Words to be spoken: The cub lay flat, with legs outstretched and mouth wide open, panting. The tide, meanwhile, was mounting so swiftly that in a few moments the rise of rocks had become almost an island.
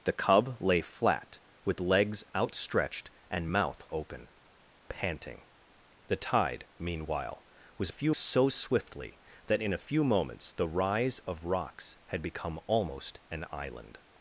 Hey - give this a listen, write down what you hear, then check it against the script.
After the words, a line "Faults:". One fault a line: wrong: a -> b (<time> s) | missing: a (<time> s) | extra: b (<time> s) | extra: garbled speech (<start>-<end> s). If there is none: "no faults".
The cub lay flat, with legs outstretched and mouth open, panting. The tide, meanwhile, was few so swiftly that in a few moments the rise of rocks had become almost an island.
Faults:
missing: wide (3.8 s)
wrong: mounting -> few (7.9 s)